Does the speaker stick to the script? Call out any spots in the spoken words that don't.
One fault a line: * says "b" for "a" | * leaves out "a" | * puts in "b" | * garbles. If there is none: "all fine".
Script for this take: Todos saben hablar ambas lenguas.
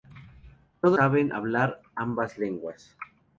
all fine